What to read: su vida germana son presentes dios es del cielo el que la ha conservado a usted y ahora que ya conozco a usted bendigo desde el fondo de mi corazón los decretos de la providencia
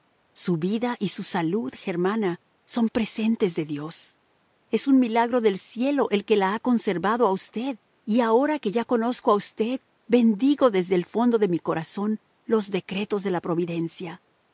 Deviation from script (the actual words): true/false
true